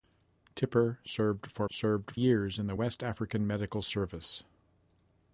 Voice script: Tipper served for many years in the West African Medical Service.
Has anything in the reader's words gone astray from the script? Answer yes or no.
yes